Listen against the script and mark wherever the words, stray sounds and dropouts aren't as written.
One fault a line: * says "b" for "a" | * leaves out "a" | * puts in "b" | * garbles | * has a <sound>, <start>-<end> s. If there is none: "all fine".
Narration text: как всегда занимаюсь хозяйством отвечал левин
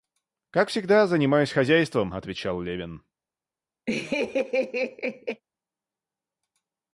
* has a laugh, 3.9-5.4 s